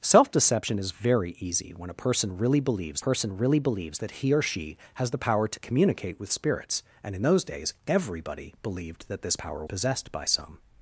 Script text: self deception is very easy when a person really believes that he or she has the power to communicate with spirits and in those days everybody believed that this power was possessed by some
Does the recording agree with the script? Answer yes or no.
no